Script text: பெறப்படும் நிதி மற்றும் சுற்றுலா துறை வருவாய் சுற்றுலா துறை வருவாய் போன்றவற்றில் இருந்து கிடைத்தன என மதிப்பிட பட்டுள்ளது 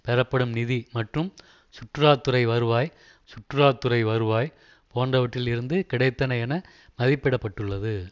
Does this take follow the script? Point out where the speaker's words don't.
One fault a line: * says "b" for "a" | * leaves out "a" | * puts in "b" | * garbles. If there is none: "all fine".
all fine